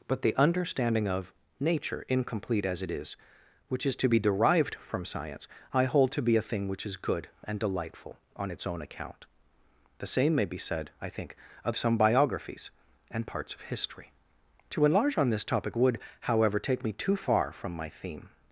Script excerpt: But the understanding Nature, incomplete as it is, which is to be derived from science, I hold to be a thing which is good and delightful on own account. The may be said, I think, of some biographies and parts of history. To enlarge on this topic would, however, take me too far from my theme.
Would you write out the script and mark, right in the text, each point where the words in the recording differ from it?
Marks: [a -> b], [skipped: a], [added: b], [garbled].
But the understanding [added: of] Nature, incomplete as it is, which is to be derived from science, I hold to be a thing which is good and delightful on [added: its] own account. The [added: same] may be said, I think, of some biographies and parts of history. To enlarge on this topic would, however, take me too far from my theme.